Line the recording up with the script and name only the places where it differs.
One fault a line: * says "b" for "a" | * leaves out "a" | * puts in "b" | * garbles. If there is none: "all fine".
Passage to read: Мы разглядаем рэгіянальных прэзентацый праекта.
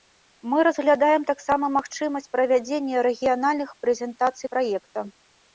* puts in "таксама магчымасць правядзення"